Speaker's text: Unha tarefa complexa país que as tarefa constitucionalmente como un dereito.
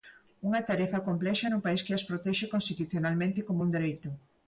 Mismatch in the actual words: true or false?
true